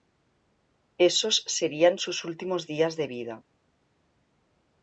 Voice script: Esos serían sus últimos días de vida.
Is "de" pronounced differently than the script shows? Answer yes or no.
no